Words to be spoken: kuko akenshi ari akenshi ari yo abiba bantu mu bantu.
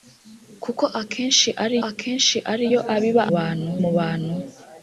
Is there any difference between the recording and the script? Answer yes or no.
no